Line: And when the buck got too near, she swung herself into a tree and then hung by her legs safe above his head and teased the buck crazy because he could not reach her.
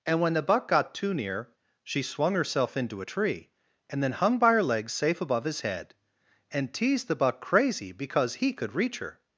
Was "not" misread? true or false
true